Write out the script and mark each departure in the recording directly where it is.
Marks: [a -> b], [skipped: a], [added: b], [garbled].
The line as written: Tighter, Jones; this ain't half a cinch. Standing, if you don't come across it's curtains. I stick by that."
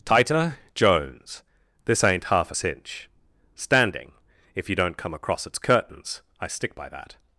Tighter, Jones; this ain't half a cinch. Standing, if you don't come across it's curtains. I stick by that."